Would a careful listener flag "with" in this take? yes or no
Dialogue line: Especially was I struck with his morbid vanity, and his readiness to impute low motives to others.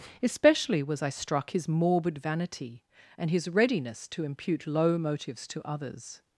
yes